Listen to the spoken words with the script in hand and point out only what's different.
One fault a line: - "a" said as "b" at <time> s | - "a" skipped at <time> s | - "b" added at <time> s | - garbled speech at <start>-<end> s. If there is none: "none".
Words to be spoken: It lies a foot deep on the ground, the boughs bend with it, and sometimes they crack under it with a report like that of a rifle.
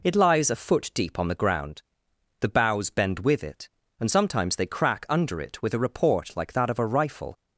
none